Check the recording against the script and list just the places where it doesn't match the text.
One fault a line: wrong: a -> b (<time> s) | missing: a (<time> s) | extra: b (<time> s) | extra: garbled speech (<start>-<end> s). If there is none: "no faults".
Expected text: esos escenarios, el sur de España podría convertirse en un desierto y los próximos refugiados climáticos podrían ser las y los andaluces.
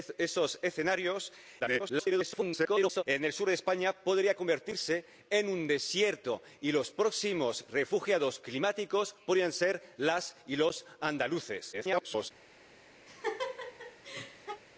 extra: garbled speech (1.6-3.0 s)
extra: garbled speech (11.7-12.3 s)